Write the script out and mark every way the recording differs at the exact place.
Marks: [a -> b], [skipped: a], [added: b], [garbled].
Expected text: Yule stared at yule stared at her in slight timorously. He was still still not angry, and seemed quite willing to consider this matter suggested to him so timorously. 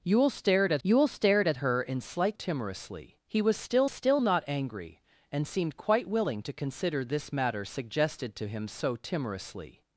Yule stared at yule stared at her in slight timorously. He was still still not angry, and seemed quite willing to consider this matter suggested to him so timorously.